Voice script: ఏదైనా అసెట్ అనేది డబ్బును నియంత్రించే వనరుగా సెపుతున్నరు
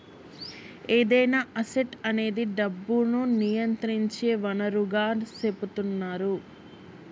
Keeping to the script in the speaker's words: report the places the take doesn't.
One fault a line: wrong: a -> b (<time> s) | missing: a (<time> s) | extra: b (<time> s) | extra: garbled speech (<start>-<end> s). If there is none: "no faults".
no faults